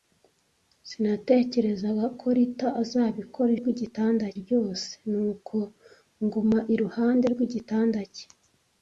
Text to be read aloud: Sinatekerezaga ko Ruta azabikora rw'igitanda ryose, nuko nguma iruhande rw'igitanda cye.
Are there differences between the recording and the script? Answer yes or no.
no